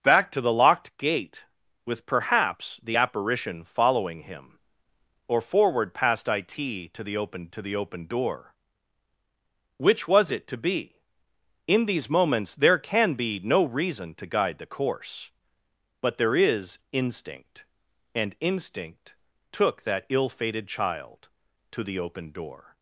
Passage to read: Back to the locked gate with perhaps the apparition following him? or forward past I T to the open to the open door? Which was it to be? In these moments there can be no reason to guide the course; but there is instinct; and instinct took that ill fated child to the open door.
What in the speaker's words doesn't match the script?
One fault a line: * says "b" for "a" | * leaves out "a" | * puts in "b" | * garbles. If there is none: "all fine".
all fine